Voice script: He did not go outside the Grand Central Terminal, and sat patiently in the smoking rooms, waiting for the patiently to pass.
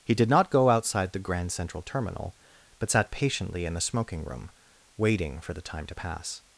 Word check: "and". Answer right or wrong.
wrong